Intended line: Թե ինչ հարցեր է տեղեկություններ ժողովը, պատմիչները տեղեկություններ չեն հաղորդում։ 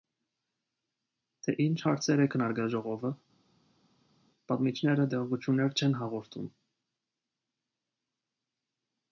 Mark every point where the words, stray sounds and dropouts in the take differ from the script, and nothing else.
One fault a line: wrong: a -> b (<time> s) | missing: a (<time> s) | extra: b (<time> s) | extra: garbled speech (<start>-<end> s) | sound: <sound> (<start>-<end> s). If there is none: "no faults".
wrong: տեղեկություններ -> քննարկել (2.3 s)